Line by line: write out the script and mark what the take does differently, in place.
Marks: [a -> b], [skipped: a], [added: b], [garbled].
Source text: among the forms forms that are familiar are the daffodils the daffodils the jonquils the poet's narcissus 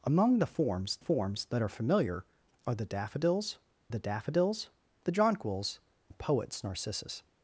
among the forms forms that are familiar are the daffodils the daffodils the jonquils the poet's narcissus